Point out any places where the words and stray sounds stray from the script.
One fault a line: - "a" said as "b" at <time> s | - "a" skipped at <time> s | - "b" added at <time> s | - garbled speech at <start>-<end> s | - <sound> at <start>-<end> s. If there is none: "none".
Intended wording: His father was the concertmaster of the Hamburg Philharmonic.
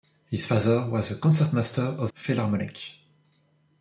- "the Hamburg" skipped at 2.1 s